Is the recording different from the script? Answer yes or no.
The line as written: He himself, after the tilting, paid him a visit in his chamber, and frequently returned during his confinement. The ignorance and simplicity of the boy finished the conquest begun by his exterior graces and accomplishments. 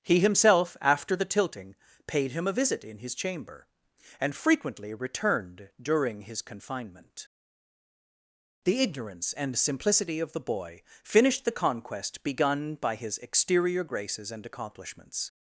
no